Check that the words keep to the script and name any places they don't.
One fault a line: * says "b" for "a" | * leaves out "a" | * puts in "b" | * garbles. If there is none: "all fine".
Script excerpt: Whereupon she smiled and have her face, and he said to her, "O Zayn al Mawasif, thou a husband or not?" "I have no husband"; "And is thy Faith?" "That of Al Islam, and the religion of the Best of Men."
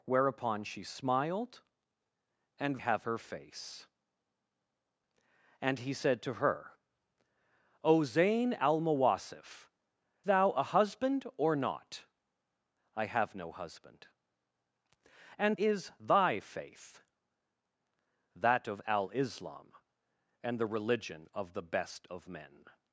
all fine